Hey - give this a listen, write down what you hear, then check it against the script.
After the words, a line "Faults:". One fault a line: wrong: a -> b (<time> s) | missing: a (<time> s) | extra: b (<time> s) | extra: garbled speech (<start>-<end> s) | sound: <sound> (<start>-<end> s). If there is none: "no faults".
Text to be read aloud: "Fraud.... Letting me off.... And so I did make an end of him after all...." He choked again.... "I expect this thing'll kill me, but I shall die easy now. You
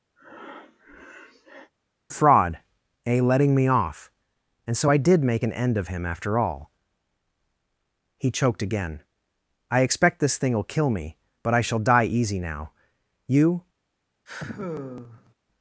"Fraud.... a Letting me off.... And so I did make an end of him after all...." He choked again.... "I expect this thing'll kill me, but I shall die easy now. You
Faults:
sound: breath (0.2-1.7 s)
extra: a (3.1 s)
sound: sigh (14.3-15.3 s)